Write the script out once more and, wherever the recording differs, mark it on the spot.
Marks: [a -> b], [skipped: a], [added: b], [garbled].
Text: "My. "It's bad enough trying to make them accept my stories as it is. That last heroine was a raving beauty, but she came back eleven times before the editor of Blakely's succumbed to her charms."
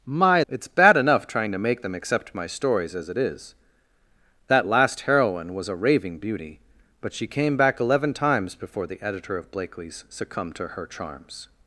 "My. "It's bad enough trying to make them accept my stories as it is. That last heroine was a raving beauty, but she came back eleven times before the editor of Blakely's succumbed to her charms."